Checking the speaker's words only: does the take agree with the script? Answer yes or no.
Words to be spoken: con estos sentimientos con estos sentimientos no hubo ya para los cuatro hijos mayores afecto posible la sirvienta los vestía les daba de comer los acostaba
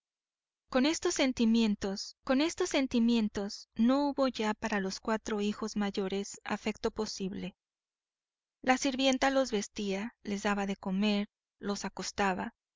yes